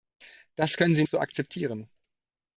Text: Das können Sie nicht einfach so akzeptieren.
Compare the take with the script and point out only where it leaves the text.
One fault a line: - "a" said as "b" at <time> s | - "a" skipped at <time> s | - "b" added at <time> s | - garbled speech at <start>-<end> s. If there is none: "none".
- "nicht einfach" skipped at 1.0 s